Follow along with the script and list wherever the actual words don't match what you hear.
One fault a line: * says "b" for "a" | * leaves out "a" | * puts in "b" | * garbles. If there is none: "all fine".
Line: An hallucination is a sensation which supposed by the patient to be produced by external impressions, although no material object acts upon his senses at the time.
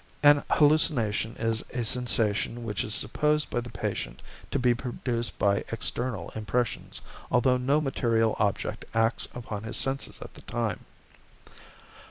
* puts in "is"